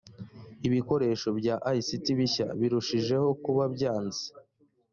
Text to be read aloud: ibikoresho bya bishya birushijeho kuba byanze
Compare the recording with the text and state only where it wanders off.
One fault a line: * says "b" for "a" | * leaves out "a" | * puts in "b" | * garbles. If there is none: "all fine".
* puts in "ict"